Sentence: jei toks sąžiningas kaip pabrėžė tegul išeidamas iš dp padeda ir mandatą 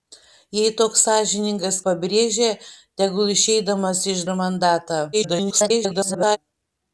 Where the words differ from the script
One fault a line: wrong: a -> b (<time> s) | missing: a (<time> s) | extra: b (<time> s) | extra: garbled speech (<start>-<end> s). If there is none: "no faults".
missing: kaip (1.8 s)
missing: dp padeda (4.2 s)
extra: garbled speech (5.1-6.4 s)